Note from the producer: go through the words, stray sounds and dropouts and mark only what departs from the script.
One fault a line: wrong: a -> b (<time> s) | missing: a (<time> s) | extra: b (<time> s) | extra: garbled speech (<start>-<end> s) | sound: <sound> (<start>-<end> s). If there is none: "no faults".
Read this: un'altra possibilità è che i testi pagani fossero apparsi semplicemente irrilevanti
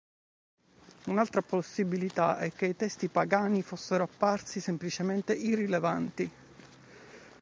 no faults